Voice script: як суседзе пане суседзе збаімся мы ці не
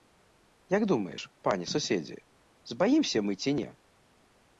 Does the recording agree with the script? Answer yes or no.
no